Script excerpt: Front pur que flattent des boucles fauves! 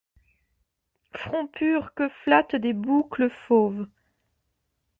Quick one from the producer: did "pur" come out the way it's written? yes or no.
yes